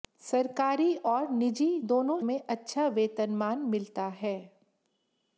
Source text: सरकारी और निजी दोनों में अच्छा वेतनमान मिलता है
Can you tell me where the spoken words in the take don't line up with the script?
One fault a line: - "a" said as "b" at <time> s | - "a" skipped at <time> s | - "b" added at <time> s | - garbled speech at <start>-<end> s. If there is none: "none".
none